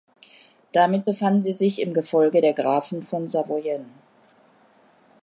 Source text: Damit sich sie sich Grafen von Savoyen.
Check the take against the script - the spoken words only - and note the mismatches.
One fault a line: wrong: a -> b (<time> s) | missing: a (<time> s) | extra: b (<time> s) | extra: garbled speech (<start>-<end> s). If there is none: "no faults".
wrong: sich -> befanden (1.0 s)
extra: im Gefolge der (1.8 s)